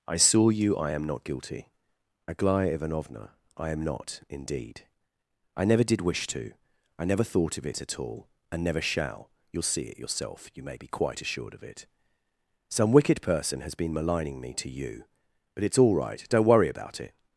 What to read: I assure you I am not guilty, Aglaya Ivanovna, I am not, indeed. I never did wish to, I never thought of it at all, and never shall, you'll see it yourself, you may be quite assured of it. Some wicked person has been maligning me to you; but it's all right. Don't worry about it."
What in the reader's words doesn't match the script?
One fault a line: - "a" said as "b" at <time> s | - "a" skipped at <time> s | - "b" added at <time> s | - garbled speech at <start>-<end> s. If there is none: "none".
- "assure" said as "saw" at 0.2 s